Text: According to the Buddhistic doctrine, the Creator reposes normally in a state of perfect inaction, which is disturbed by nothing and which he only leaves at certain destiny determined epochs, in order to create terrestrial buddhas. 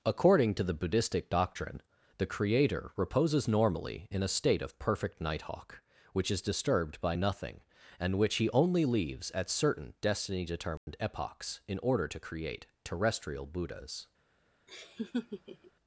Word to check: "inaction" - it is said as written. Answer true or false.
false